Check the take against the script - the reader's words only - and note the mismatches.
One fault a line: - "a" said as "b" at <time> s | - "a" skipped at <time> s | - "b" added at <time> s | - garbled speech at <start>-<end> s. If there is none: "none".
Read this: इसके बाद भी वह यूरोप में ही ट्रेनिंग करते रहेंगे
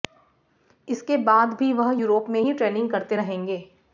none